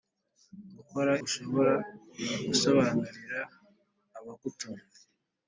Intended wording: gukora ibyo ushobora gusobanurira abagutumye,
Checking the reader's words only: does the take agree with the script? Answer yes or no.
no